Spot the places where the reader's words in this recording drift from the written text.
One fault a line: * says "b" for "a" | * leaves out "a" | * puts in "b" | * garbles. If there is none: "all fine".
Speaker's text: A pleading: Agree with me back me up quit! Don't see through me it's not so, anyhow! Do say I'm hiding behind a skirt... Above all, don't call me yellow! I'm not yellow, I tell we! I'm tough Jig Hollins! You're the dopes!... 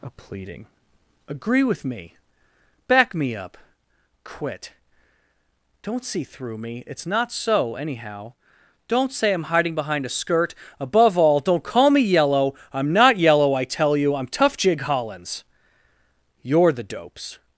* says "Don't" for "Do"
* says "you" for "we"